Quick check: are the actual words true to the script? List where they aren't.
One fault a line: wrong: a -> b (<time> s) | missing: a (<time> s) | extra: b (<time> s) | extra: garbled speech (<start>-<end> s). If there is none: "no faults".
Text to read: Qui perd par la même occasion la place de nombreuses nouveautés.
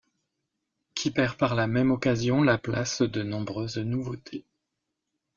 no faults